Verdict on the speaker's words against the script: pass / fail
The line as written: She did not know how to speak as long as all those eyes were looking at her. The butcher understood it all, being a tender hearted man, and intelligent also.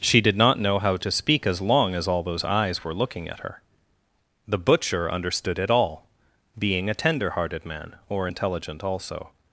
fail